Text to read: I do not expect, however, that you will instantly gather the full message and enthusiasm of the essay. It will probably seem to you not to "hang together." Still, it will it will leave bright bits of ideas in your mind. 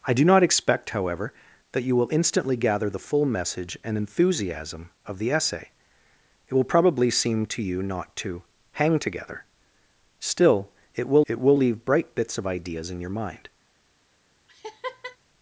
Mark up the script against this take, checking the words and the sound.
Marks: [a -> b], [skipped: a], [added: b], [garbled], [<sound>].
I do not expect, however, that you will instantly gather the full message and enthusiasm of the essay. It will probably seem to you not to "hang together." Still, it will it will leave bright bits of ideas in your mind. [laugh]